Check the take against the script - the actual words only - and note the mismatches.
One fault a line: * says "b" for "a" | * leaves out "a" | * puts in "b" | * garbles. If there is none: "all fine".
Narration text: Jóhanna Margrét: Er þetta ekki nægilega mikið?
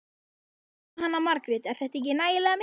all fine